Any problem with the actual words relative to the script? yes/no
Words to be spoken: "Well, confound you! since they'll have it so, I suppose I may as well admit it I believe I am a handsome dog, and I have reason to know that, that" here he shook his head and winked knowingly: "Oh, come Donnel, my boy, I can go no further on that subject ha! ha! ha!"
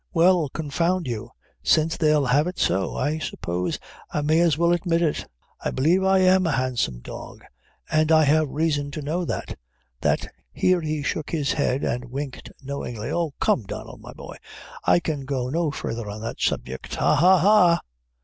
no